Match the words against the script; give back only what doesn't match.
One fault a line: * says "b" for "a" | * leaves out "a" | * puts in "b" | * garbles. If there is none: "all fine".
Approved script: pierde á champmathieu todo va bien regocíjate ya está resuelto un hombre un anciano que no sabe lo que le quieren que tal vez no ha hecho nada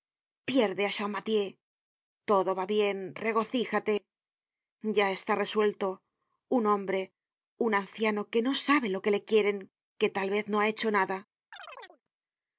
all fine